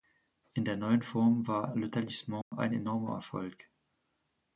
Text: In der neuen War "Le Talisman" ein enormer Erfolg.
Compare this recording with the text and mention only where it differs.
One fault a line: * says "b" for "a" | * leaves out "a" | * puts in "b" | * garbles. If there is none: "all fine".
* puts in "Form"